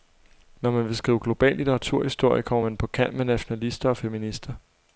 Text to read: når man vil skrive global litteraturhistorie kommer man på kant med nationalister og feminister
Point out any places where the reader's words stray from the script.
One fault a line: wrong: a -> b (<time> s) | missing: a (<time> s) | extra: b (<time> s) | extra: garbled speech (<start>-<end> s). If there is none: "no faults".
no faults